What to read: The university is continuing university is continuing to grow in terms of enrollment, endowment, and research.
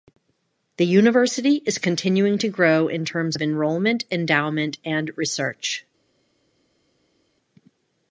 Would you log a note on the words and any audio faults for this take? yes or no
yes